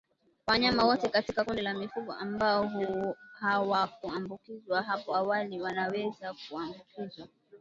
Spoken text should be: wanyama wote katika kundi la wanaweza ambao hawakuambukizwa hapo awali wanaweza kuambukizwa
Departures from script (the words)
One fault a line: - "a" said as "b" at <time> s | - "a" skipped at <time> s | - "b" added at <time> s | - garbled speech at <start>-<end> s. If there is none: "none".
- "wanaweza" said as "mifugo" at 1.7 s